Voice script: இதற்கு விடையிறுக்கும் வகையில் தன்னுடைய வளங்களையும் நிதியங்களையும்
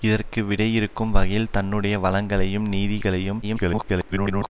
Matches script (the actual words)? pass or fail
fail